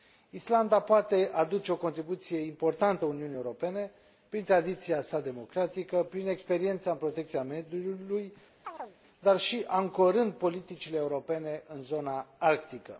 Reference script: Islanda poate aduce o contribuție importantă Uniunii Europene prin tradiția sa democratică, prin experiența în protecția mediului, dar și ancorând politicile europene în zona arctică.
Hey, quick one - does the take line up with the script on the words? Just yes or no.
yes